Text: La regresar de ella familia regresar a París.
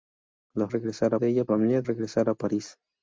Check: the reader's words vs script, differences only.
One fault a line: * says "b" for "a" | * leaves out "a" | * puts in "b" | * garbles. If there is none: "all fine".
all fine